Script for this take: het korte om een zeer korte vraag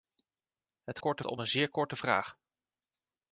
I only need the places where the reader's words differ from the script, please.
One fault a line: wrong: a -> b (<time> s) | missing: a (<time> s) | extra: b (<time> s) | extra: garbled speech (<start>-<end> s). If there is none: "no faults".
no faults